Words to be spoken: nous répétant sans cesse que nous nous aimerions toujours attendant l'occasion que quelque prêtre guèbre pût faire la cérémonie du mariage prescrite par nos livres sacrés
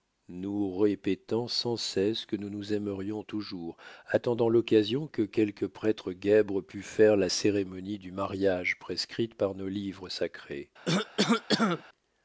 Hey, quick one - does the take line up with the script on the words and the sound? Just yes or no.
no